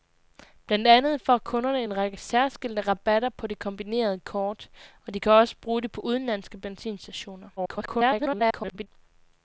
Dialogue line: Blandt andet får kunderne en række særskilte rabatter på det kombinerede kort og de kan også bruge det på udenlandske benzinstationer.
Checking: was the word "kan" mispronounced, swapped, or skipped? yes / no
no